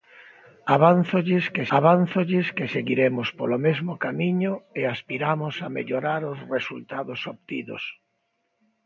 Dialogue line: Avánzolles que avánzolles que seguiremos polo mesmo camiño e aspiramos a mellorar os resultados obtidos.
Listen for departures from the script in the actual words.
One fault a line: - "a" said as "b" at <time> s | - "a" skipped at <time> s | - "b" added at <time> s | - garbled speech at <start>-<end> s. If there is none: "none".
none